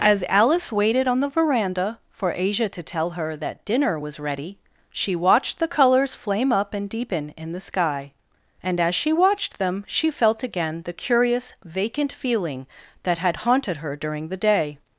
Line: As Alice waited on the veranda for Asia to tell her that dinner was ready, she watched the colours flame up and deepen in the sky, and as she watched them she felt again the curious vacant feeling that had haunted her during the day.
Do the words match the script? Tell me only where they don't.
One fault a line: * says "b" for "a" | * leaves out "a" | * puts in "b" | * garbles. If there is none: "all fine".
all fine